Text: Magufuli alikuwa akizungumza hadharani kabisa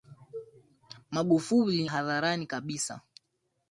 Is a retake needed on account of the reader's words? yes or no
yes